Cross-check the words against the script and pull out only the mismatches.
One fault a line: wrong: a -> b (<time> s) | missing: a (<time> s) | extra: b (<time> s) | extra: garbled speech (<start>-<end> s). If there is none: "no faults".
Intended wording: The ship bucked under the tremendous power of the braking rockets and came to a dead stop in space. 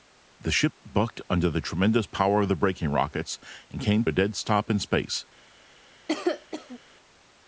missing: to (4.1 s)